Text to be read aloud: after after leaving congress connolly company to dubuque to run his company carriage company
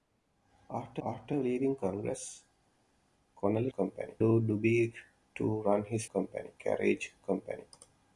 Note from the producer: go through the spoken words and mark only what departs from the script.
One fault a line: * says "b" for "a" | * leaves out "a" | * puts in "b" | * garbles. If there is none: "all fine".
all fine